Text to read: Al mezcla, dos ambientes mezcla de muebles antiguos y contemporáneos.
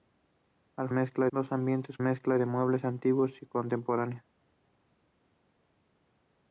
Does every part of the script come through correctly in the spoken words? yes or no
yes